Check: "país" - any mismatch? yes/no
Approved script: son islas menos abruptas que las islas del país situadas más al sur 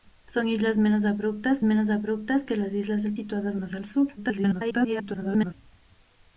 yes